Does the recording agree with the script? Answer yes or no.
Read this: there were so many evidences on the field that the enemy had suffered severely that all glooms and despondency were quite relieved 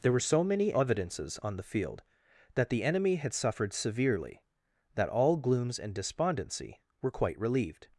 yes